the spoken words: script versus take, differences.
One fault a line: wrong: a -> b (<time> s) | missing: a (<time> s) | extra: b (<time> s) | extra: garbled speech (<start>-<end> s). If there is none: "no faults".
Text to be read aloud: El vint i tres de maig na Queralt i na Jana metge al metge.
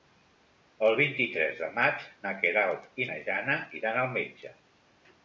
wrong: metge -> iran (3.8 s)